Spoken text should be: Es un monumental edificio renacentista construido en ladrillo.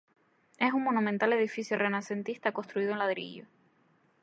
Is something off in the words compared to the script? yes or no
no